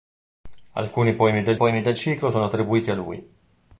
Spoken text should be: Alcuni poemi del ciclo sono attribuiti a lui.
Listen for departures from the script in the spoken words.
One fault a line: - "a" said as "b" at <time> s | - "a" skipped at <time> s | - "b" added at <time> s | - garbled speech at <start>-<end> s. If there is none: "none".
- "poemi del" added at 1.5 s